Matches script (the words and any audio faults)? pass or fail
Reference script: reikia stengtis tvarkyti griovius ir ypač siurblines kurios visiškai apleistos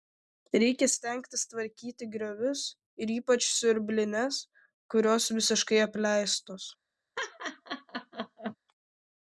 fail